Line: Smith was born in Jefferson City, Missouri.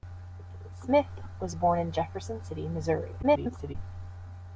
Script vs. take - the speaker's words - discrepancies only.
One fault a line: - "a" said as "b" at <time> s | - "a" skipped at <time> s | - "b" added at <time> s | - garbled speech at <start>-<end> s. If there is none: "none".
- garbled speech at 3.2-3.8 s